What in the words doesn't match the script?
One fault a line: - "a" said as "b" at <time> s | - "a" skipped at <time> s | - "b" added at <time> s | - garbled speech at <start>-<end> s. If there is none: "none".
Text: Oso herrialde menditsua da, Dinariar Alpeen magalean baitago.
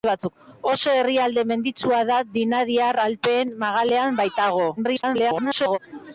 - garbled speech at 4.8-5.8 s